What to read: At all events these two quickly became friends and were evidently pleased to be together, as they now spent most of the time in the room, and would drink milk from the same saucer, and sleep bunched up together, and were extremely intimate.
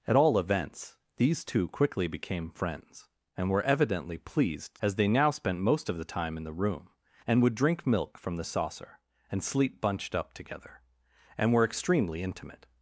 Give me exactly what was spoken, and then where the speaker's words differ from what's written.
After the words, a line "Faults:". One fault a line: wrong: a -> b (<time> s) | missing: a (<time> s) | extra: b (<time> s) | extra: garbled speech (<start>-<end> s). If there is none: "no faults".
At all events these two quickly became friends and were evidently pleased as they now spent most of the time in the room, and would drink milk from the saucer, and sleep bunched up together, and were extremely intimate.
Faults:
missing: to be together (4.8 s)
missing: same (8.4 s)